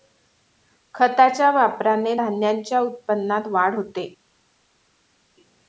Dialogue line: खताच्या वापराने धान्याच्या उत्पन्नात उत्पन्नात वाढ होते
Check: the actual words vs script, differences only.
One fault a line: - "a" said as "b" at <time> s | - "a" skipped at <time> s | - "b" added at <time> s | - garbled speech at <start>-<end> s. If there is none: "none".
- "उत्पन्नात" skipped at 3.5 s